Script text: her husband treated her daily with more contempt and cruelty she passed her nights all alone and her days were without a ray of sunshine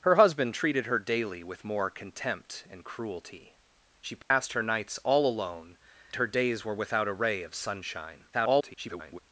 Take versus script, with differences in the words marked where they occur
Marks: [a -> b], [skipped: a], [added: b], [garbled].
her husband treated her daily with more contempt and cruelty she passed her nights all alone [skipped: and] her days were without a ray of sunshine [garbled]